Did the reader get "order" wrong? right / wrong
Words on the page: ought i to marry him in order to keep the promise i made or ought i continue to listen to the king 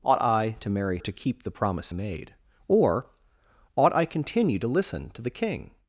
wrong